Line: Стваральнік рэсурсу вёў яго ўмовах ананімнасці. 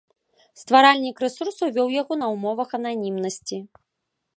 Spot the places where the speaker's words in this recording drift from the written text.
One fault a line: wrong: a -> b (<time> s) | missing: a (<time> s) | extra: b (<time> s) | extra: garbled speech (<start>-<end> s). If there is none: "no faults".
extra: на (2.2 s)